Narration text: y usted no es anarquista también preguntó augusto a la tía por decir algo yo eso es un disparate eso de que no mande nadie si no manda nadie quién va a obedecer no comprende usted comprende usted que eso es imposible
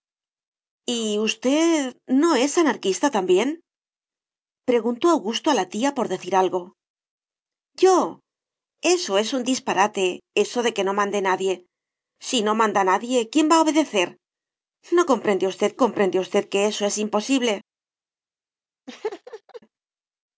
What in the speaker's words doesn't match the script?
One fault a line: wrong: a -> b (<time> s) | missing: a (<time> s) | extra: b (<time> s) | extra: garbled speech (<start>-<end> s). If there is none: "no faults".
no faults